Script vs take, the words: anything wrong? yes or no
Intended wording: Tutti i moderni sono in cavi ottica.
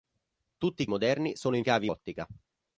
no